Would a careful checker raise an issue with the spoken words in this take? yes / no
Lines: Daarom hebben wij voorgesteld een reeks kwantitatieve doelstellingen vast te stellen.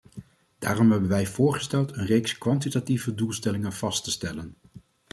no